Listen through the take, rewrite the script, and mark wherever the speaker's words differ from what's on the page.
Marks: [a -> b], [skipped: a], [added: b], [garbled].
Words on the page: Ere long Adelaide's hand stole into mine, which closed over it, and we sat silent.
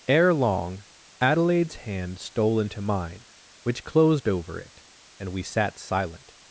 Ere long Adelaide's hand stole into mine, which closed over it, and we sat silent.